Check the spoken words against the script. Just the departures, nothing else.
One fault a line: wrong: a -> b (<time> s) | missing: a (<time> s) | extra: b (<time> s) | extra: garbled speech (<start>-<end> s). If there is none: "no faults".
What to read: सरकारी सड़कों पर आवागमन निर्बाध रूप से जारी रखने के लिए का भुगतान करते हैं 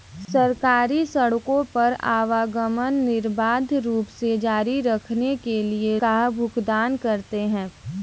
no faults